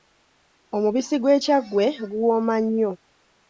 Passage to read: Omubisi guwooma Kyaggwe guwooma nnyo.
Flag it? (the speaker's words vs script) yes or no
yes